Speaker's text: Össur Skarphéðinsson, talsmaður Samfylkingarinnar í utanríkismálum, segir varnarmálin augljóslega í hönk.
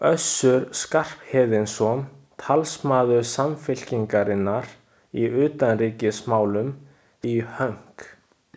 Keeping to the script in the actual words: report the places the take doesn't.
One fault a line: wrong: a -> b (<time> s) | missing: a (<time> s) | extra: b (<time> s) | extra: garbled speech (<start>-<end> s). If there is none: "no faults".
missing: segir varnarmálin augljóslega (6.7 s)